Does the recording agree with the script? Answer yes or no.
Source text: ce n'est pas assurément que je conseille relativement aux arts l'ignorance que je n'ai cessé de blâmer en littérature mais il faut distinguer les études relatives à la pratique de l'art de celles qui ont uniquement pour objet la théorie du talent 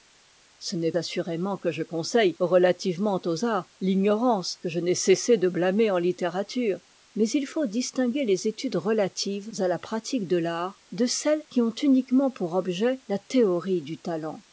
no